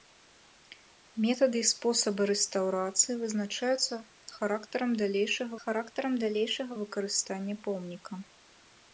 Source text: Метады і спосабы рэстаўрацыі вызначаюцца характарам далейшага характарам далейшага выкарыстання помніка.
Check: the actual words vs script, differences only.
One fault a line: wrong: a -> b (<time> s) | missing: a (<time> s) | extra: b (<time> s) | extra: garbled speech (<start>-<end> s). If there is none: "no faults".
no faults